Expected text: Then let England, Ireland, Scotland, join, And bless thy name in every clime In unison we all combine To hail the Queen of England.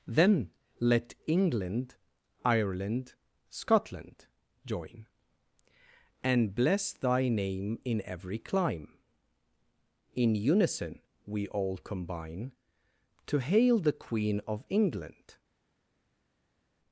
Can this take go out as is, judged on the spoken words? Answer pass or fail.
pass